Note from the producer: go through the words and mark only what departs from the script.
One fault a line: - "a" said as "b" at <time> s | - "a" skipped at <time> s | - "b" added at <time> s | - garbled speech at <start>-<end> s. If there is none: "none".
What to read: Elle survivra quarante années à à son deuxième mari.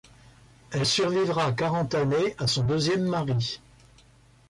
- "à" skipped at 2.5 s